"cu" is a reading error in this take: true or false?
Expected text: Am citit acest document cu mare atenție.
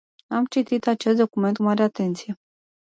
true